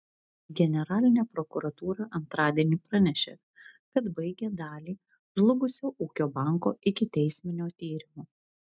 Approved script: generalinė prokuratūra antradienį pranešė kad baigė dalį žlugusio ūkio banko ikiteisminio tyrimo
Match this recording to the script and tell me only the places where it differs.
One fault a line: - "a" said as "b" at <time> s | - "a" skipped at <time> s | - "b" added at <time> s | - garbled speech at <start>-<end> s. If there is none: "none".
none